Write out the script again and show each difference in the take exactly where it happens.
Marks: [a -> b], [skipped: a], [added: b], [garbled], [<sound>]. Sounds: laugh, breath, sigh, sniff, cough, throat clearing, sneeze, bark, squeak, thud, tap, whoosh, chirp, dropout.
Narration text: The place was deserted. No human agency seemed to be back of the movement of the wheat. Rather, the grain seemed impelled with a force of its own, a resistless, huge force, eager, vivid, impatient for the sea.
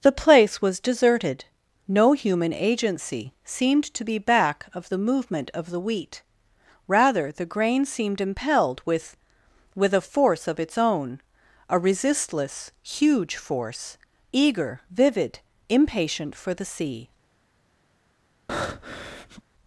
The place was deserted. No human agency seemed to be back of the movement of the wheat. Rather, the grain seemed impelled with [added: with] a force of its own, a resistless, huge force, eager, vivid, impatient for the sea. [breath]